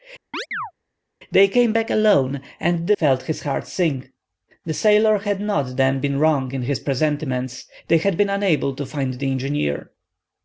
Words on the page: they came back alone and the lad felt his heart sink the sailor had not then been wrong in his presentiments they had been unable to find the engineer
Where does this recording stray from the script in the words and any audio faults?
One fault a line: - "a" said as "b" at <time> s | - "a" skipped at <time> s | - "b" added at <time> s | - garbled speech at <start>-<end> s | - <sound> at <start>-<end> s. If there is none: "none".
- chirp at 0.3-0.7 s
- "lad" skipped at 3.0 s